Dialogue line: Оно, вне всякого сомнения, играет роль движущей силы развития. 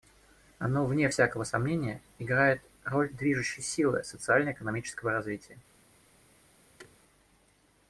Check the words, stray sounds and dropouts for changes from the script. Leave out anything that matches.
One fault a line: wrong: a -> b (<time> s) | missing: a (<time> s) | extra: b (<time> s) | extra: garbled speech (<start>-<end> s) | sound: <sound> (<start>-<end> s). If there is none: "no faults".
extra: социально экономического (4.0 s)
sound: thud (6.8-7.0 s)